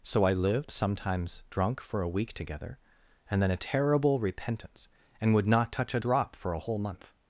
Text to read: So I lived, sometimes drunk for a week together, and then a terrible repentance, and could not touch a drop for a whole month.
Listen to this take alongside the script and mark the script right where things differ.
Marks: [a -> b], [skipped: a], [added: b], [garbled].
So I lived, sometimes drunk for a week together, and then a terrible repentance, and [could -> would] not touch a drop for a whole month.